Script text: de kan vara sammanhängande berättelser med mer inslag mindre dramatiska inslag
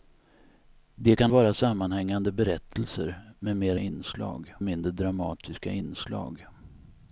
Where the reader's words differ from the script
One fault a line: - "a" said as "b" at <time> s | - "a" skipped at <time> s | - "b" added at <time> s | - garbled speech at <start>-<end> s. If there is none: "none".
none